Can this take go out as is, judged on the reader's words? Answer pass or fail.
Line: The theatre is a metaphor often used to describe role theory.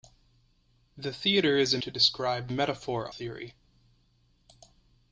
fail